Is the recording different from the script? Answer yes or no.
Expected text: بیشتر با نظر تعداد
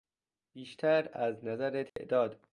yes